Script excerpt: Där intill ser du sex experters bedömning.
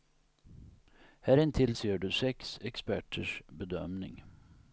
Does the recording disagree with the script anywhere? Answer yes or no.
yes